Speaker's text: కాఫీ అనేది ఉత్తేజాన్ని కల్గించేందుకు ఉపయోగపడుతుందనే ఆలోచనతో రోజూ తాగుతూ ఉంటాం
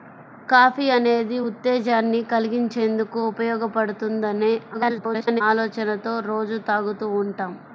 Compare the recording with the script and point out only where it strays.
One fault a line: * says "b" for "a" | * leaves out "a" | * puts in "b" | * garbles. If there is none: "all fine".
* garbles